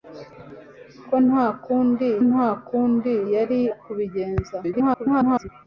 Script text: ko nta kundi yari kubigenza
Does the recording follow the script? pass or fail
fail